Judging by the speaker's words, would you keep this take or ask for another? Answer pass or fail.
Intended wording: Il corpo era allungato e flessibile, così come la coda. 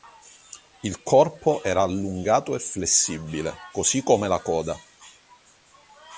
pass